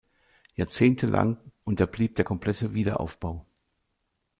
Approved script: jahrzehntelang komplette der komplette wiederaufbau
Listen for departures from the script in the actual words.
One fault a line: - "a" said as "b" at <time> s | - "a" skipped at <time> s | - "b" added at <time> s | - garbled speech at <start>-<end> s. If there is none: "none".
- "komplette" said as "unterblieb" at 1.6 s